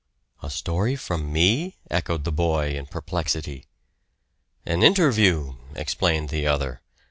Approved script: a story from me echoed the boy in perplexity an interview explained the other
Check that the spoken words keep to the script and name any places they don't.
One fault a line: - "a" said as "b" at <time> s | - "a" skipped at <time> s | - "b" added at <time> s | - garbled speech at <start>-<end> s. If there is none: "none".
none